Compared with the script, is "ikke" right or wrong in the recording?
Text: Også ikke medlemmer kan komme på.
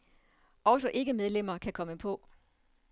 right